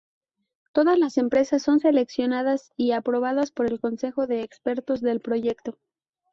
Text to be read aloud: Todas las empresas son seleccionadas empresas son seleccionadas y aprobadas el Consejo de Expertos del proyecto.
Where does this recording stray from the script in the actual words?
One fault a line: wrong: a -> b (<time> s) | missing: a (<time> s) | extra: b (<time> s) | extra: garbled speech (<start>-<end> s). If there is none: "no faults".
missing: empresas son seleccionadas (2.7 s)
extra: por (3.5 s)